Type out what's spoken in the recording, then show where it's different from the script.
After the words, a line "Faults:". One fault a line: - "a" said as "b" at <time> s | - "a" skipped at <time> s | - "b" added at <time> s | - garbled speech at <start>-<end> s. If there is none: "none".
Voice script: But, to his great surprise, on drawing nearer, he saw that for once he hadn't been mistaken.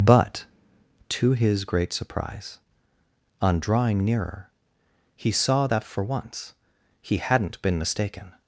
But, to his great surprise, on drawing nearer, he saw that for once he hadn't been mistaken.
Faults:
none